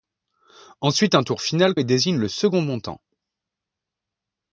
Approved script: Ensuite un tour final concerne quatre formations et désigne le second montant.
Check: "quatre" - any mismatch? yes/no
yes